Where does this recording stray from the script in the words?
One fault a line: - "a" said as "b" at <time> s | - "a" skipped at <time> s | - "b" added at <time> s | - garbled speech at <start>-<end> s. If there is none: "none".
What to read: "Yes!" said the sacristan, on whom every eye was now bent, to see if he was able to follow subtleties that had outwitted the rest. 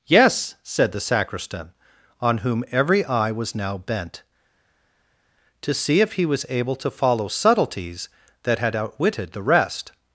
none